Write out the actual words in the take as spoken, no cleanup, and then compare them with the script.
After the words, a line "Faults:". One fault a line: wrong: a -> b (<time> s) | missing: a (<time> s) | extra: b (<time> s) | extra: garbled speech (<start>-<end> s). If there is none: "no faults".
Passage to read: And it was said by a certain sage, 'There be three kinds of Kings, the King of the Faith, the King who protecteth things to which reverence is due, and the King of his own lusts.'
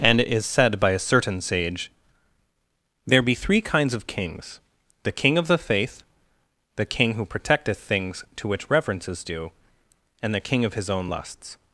And it is said by a certain sage, 'There be three kinds of Kings, the King of the Faith, the King who protecteth things to which reverence is due, and the King of his own lusts.'
Faults:
wrong: was -> is (0.3 s)